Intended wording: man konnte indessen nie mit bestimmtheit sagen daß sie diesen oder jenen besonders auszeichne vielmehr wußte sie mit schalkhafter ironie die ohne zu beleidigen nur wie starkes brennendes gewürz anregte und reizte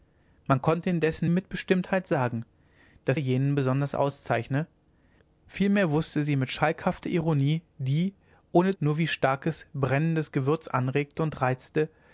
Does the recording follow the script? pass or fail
fail